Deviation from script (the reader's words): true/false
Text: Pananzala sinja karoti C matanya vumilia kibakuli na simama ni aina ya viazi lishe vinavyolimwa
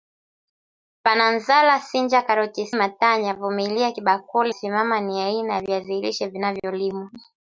true